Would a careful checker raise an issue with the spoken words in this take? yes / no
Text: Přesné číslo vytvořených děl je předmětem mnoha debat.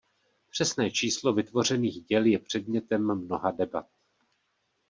no